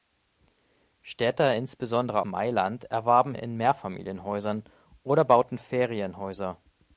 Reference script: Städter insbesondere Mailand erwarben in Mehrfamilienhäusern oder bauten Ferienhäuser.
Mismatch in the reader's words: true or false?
false